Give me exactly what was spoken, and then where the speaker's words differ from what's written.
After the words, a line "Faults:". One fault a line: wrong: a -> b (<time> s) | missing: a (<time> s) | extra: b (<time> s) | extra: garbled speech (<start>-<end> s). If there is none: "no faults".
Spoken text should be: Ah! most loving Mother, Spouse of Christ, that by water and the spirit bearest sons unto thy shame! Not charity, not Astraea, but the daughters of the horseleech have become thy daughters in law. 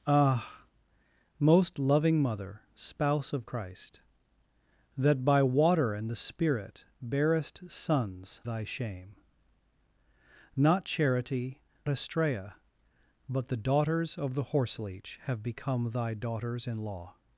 Ah! most loving Mother, Spouse of Christ, that by water and the spirit bearest sons thy shame! Not charity, Astraea, but the daughters of the horseleech have become thy daughters in law.
Faults:
missing: unto (8.4 s)
missing: not (11.6 s)